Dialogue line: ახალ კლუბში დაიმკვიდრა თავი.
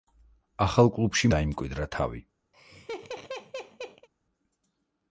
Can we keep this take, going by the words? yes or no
yes